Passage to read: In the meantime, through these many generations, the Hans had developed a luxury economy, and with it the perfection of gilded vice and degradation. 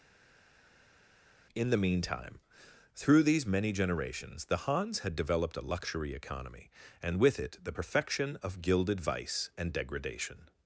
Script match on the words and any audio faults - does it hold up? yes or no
yes